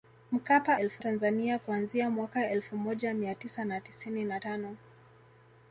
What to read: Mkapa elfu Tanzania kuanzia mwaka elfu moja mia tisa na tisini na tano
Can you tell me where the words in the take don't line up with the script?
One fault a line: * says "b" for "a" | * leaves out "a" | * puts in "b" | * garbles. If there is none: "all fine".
all fine